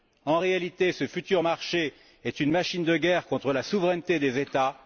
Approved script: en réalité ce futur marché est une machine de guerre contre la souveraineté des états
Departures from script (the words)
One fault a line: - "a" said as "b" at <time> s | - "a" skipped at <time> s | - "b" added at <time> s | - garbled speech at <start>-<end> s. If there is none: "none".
none